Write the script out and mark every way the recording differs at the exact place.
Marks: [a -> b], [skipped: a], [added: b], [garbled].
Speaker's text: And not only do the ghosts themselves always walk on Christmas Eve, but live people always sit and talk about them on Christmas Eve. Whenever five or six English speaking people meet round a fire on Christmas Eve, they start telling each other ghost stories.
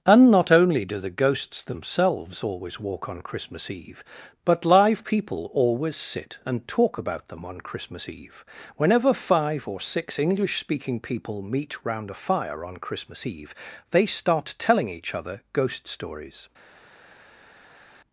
And not only do the ghosts themselves always walk on Christmas Eve, but live people always sit and talk about them on Christmas Eve. Whenever five or six English speaking people meet round a fire on Christmas Eve, they start telling each other ghost stories.